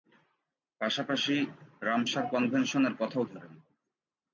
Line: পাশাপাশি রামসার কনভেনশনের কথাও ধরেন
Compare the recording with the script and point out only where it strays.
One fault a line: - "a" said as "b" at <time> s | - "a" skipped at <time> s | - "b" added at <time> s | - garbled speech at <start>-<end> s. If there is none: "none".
none